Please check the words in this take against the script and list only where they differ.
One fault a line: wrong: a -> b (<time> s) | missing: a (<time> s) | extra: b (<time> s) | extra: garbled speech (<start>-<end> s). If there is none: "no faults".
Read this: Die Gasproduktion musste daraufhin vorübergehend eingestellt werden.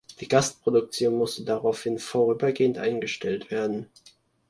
no faults